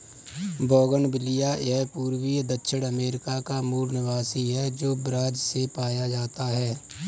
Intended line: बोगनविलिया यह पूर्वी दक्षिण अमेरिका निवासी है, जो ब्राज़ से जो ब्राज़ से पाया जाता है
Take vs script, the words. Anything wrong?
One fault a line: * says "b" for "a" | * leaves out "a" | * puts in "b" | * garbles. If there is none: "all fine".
* puts in "का मूल"
* leaves out "जो ब्राज़ से"